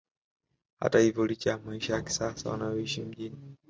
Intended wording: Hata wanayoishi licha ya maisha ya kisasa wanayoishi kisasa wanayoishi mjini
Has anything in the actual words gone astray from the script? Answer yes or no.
yes